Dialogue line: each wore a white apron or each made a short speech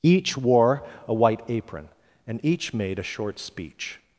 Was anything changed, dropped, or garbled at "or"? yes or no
yes